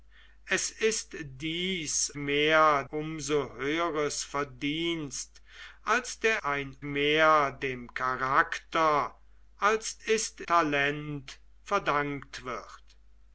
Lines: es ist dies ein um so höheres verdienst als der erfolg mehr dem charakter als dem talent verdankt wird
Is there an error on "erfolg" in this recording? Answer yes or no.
yes